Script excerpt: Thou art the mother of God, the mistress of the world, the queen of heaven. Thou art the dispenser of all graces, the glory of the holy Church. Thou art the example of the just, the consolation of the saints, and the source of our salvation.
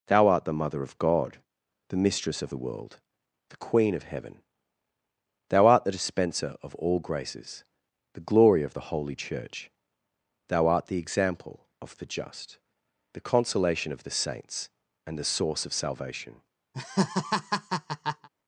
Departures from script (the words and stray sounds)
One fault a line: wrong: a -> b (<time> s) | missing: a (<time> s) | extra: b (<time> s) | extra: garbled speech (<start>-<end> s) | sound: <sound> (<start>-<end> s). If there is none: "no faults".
missing: our (15.7 s)
sound: laugh (16.7-18.3 s)